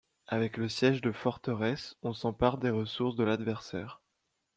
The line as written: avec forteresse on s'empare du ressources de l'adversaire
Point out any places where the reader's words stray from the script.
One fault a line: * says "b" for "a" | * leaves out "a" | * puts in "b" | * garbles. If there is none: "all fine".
* puts in "le siège de"
* says "des" for "du"